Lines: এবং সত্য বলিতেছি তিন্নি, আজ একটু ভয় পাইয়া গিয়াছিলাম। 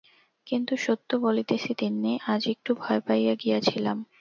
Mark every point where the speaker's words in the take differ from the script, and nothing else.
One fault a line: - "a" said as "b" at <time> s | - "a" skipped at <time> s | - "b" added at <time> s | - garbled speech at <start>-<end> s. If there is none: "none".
- "এবং" said as "কিন্তু" at 0.5 s